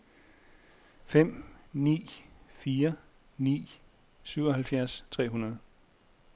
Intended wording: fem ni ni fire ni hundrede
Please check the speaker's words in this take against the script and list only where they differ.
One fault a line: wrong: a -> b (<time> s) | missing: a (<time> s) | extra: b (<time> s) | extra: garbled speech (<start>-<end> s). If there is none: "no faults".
extra: fire (2.5 s)
wrong: fire ni -> syvoghalvfjerds tre (4.2 s)